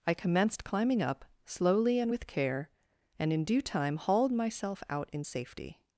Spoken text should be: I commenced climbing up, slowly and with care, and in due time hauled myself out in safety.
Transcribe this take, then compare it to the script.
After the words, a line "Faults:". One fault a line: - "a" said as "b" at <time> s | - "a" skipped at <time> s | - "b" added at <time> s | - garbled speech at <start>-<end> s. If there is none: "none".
I commenced climbing up, slowly and with care, and in due time hauled myself out in safety.
Faults:
none